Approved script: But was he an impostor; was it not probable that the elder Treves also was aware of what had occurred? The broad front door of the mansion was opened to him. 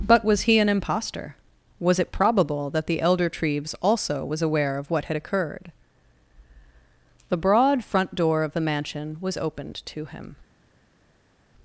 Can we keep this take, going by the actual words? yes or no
no